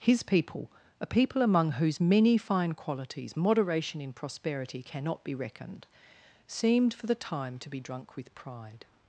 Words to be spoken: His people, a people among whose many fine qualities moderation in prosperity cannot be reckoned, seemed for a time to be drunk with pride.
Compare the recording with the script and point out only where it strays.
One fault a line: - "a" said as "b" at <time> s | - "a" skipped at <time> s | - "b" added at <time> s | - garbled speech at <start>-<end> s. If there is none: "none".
- "a" said as "the" at 7.1 s